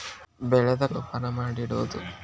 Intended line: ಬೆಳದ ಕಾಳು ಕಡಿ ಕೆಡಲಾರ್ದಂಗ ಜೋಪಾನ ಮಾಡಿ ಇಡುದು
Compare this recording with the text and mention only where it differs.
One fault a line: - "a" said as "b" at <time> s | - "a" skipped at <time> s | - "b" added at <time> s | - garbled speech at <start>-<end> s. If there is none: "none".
- "ಕಾಳು ಕಡಿ ಕೆಡಲಾರ್ದಂಗ" skipped at 0.8 s